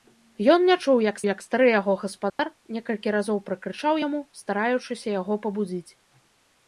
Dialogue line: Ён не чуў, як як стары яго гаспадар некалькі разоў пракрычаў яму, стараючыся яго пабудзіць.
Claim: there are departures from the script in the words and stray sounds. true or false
true